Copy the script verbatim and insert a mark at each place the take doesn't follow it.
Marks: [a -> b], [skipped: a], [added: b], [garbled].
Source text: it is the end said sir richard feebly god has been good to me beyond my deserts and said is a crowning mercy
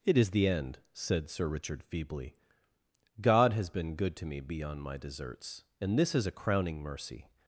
it is the end said sir richard feebly god has been good to me beyond my deserts and [said -> this] is a crowning mercy